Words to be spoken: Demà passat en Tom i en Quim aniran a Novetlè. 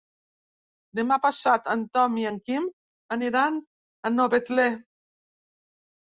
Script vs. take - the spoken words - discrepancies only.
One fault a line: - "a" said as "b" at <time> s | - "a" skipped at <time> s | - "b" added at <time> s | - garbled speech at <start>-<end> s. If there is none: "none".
none